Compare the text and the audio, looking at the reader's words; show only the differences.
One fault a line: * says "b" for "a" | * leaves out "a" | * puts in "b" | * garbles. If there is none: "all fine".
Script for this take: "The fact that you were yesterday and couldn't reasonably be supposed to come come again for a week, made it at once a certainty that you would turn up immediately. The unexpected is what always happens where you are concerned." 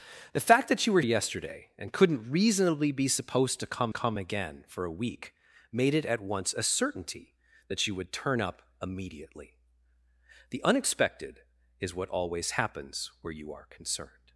all fine